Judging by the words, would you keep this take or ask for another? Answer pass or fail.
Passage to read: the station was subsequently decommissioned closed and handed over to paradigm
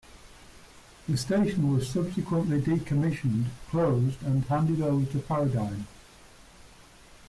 pass